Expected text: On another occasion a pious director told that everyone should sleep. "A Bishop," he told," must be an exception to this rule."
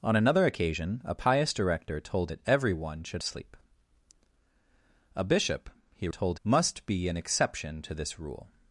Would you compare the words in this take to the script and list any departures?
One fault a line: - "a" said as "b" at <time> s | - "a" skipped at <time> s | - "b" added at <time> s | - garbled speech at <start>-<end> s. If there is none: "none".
none